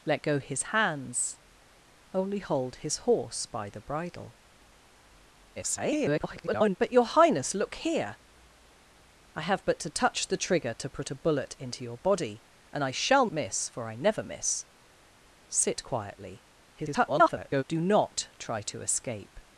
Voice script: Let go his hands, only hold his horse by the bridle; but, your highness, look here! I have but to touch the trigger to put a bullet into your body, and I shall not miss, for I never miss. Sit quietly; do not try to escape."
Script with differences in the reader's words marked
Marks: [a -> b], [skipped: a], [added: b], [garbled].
Let go his hands, only hold his horse by the bridle; [garbled] but, your highness, look here! I have but to touch the trigger to put a bullet into your body, and I shall [skipped: not] miss, for I never miss. Sit quietly; [garbled] do not try to escape."